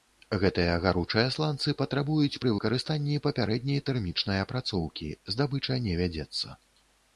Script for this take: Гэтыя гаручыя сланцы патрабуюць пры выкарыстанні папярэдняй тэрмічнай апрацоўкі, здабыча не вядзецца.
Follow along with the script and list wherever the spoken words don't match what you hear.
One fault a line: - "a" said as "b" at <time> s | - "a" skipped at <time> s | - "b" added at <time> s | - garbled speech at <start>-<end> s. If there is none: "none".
none